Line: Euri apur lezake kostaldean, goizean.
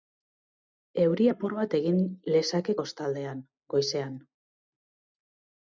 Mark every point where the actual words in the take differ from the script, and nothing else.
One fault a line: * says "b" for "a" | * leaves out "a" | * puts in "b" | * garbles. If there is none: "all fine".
* puts in "bat egin"